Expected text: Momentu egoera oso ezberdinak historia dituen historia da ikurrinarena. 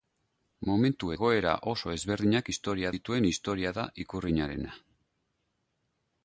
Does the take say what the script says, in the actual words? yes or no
yes